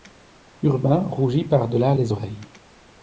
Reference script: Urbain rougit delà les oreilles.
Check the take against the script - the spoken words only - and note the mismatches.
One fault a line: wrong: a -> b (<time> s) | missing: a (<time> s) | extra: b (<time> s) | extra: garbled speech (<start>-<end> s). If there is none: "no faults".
extra: par (1.4 s)